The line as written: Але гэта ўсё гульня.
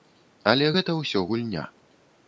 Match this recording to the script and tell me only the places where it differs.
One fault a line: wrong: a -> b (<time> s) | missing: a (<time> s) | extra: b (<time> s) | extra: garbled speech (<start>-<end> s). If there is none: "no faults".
no faults